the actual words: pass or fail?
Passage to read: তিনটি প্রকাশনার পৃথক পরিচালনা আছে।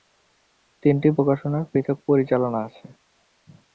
pass